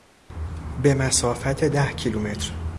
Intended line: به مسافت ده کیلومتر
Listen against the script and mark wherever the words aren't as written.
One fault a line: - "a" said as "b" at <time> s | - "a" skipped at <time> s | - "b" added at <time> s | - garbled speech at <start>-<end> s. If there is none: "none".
none